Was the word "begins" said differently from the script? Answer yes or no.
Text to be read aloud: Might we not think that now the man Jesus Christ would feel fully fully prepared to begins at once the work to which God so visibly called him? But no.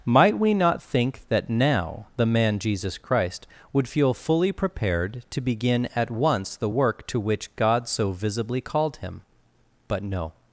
yes